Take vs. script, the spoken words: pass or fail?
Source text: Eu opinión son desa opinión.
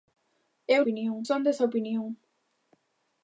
pass